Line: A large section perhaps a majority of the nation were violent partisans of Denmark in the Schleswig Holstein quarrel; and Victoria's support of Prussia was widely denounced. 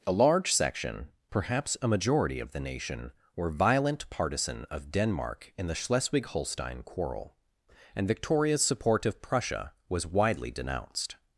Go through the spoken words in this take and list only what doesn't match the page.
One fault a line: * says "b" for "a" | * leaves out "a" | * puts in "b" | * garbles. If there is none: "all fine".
* says "partisan" for "partisans"